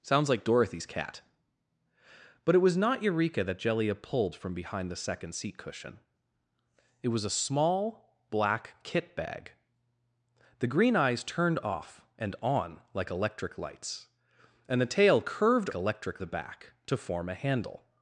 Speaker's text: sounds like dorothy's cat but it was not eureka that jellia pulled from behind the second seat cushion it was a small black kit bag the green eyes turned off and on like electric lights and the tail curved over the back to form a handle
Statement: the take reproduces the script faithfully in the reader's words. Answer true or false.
false